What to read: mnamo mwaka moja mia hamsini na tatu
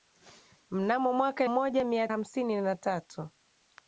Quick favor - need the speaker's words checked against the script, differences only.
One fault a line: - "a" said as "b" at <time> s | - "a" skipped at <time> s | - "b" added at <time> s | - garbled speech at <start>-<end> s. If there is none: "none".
none